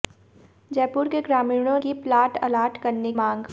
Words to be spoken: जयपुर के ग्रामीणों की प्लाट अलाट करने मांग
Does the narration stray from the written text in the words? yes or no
no